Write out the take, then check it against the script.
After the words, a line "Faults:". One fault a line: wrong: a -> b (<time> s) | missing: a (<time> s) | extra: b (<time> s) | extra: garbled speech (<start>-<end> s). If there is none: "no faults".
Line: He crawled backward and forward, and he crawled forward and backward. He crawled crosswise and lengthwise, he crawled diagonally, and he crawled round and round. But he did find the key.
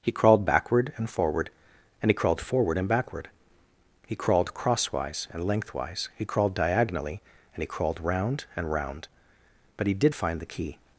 He crawled backward and forward, and he crawled forward and backward. He crawled crosswise and lengthwise, he crawled diagonally, and he crawled round and round. But he did find the key.
Faults:
no faults